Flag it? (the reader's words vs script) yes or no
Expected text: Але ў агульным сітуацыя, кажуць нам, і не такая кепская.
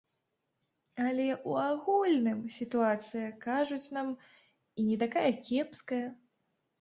no